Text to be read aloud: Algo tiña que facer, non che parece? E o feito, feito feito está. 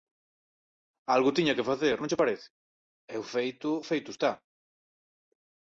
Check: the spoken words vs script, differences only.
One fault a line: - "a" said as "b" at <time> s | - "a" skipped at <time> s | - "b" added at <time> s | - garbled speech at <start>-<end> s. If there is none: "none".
- "feito" skipped at 4.1 s